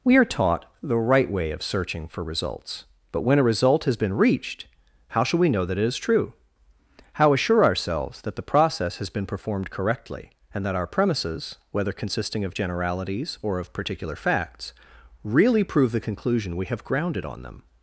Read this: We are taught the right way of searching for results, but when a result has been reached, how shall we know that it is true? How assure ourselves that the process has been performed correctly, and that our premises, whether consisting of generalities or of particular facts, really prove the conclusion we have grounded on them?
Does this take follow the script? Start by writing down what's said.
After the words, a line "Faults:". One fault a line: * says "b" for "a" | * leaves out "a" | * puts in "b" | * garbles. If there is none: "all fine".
We are taught the right way of searching for results, but when a result has been reached, how shall we know that it is true? How assure ourselves that the process has been performed correctly, and that our premises, whether consisting of generalities or of particular facts, really prove the conclusion we have grounded on them?
Faults:
all fine